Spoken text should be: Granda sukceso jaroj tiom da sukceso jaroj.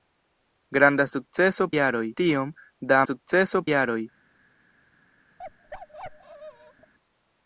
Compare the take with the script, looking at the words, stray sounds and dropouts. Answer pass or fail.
fail